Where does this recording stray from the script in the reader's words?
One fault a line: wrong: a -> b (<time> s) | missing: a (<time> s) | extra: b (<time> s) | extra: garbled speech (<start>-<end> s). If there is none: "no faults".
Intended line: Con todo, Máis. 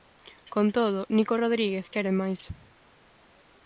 extra: Nico Rodríguez quere (1.1 s)